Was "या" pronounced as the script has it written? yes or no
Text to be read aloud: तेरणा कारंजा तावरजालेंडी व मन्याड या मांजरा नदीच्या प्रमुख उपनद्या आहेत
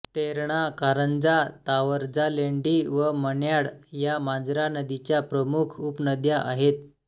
yes